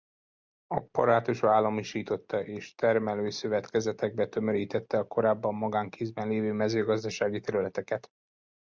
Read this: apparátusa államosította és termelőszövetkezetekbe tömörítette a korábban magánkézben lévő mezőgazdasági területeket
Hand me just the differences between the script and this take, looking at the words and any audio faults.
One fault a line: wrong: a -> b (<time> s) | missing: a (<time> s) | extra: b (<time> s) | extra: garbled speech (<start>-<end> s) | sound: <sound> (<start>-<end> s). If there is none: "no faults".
no faults